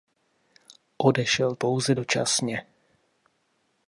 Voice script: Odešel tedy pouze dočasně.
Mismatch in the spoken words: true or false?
true